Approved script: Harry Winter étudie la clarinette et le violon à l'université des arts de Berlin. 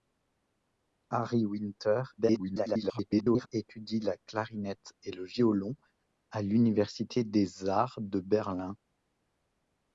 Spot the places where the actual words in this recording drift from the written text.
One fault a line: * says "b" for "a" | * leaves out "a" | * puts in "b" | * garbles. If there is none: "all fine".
* garbles